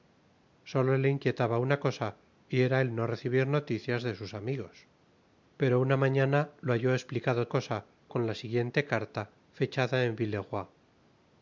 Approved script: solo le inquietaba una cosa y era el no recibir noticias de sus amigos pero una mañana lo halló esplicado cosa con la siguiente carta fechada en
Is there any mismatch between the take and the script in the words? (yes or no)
no